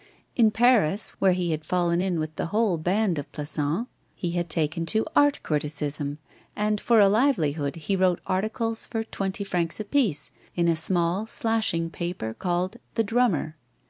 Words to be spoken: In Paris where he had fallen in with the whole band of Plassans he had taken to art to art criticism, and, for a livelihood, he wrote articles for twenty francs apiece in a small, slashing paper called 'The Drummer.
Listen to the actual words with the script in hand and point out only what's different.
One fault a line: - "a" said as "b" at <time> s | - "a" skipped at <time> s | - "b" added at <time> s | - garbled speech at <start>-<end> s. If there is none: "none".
- "to art" skipped at 5.4 s